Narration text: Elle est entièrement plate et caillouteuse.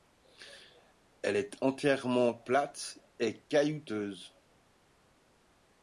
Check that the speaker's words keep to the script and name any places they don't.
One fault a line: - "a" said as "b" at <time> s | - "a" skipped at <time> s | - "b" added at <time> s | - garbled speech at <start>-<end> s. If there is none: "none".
none